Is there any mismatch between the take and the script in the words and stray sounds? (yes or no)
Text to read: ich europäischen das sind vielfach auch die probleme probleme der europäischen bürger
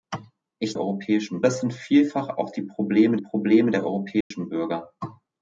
yes